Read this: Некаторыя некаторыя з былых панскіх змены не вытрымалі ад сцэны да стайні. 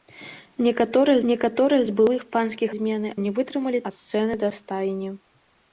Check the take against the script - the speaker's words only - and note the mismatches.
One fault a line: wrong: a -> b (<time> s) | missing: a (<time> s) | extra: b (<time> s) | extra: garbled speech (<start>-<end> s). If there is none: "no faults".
no faults